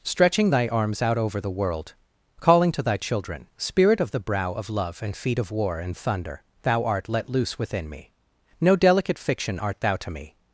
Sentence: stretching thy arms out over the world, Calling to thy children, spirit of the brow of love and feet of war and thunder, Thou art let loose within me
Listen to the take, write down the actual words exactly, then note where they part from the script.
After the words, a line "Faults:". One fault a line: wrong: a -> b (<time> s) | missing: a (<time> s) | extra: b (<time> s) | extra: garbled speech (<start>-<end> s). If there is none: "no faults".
stretching thy arms out over the world, Calling to thy children, spirit of the brow of love and feet of war and thunder, Thou art let loose within me No delicate fiction art thou to me
Faults:
extra: No delicate fiction art thou to me (8.6 s)